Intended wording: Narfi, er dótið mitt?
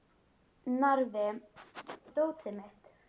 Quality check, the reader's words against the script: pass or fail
pass